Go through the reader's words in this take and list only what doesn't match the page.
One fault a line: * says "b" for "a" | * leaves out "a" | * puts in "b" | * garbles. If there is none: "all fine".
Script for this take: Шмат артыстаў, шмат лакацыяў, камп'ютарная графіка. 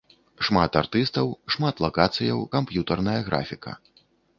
all fine